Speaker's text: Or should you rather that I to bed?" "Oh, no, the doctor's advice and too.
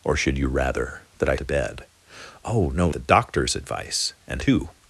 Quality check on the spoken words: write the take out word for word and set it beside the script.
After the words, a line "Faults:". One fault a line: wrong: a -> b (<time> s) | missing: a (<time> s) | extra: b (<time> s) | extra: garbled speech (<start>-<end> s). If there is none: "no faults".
Or should you rather that I to bed?" "Oh, no, the doctor's advice and too.
Faults:
no faults